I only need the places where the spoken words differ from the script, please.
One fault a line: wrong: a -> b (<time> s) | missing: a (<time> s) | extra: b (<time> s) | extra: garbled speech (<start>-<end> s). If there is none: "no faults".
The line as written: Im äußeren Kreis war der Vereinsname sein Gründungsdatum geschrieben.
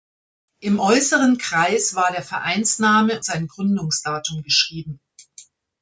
no faults